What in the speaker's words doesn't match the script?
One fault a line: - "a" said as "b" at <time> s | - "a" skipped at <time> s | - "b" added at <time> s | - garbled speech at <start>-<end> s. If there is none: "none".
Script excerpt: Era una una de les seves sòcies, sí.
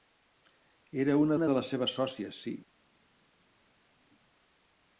none